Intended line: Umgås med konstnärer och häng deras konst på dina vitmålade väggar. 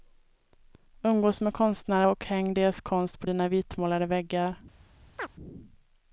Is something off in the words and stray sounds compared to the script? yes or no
yes